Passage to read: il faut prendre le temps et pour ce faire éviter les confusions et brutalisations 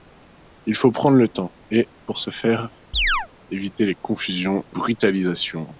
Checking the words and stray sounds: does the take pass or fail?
fail